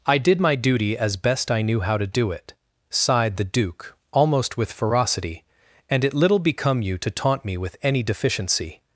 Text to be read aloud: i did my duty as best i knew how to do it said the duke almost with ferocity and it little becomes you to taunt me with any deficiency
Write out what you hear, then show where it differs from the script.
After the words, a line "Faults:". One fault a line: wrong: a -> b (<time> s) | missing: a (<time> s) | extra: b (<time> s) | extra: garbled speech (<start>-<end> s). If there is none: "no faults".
i did my duty as best i knew how to do it sighed the duke almost with ferocity and it little become you to taunt me with any deficiency
Faults:
wrong: said -> sighed (2.9 s)
wrong: becomes -> become (6.4 s)